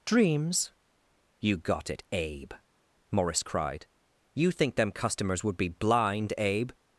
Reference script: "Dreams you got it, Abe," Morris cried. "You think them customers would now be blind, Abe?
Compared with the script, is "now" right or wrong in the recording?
wrong